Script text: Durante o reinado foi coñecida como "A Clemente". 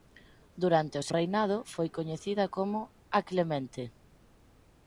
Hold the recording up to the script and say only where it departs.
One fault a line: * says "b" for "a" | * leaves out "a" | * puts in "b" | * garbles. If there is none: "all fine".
all fine